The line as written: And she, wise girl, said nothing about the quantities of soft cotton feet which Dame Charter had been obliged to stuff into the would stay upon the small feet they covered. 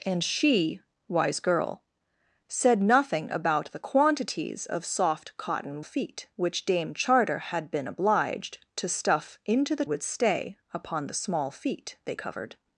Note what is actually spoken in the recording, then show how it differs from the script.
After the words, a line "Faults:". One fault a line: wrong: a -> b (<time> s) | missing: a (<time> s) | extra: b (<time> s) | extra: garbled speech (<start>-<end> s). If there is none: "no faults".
And she, wise girl, said nothing about the quantities of soft cotton feet which Dame Charter had been obliged to stuff into the would stay upon the small feet they covered.
Faults:
no faults